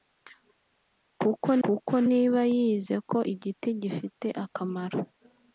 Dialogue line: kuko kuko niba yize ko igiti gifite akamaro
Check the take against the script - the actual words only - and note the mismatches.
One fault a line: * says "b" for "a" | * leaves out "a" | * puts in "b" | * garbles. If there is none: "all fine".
all fine